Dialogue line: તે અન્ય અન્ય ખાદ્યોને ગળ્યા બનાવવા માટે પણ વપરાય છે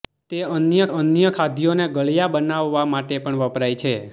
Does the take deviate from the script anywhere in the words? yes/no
no